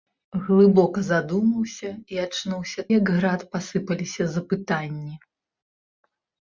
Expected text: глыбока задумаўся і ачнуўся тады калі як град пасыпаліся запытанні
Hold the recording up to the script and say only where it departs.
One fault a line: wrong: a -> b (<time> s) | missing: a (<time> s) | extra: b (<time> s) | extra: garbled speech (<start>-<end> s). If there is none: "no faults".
missing: тады калі (2.9 s)